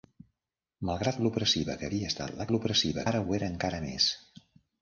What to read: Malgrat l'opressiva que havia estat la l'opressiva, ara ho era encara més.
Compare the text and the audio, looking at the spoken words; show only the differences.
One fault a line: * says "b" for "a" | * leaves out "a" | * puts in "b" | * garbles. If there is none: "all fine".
all fine